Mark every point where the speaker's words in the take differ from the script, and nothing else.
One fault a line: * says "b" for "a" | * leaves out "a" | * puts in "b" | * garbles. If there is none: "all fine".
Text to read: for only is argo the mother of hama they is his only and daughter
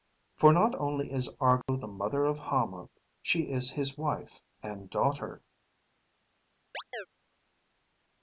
* puts in "not"
* says "she" for "they"
* says "wife" for "only"